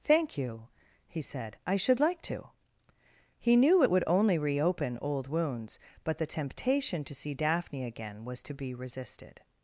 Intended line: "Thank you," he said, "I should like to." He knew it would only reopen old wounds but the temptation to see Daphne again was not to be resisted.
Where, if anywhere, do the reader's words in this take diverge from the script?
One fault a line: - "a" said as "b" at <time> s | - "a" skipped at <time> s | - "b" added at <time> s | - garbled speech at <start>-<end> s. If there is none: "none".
- "not" skipped at 8.4 s